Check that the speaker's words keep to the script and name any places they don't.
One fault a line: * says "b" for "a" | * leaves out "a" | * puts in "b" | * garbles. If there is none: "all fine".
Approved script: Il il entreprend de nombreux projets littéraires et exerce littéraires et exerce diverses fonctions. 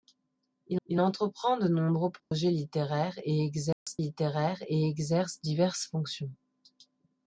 all fine